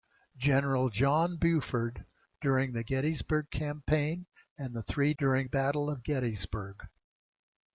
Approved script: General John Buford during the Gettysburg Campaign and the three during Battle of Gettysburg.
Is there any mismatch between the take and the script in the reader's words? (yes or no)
no